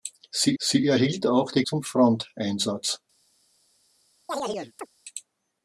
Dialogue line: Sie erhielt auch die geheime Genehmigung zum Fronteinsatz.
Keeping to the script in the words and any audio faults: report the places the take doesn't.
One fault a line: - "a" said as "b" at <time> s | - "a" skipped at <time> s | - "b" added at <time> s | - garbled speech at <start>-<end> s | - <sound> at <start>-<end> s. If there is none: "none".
- "sie" added at 0.6 s
- "geheime Genehmigung" skipped at 1.6 s
- chirp at 4.3-4.9 s